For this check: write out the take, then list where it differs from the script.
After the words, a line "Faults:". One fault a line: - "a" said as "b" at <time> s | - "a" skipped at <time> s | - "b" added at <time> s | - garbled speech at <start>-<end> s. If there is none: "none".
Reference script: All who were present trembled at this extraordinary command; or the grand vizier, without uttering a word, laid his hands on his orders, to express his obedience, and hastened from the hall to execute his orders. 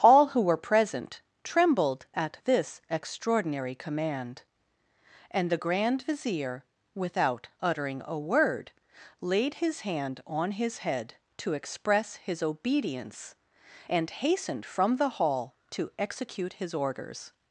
All who were present trembled at this extraordinary command; and the grand vizier, without uttering a word, laid his hand on his head, to express his obedience, and hastened from the hall to execute his orders.
Faults:
- "or" said as "and" at 5.3 s
- "hands" said as "hand" at 9.8 s
- "orders" said as "head" at 10.8 s